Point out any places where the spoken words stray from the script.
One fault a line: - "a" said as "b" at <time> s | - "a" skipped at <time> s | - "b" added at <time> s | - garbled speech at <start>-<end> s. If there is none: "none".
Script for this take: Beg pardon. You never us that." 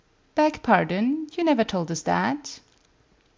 - "told" added at 1.7 s